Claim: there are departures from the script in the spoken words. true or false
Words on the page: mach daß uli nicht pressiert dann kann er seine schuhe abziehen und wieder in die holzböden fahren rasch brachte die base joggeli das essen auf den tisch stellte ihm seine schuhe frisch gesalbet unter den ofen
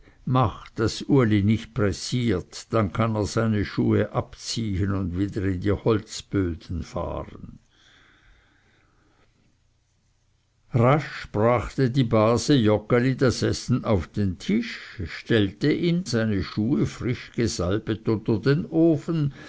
false